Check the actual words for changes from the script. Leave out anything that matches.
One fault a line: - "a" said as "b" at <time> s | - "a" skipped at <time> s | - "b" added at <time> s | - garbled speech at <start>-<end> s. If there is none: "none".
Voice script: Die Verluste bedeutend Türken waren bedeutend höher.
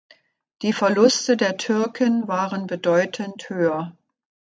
- "bedeutend" said as "der" at 1.4 s